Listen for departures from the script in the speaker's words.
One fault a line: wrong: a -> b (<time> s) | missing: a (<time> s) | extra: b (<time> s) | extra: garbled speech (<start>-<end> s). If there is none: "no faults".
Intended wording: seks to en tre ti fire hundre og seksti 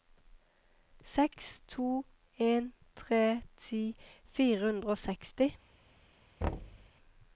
no faults